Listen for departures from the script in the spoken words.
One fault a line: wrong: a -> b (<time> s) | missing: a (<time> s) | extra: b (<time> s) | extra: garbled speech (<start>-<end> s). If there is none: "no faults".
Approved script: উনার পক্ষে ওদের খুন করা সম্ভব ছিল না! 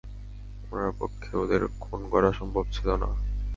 no faults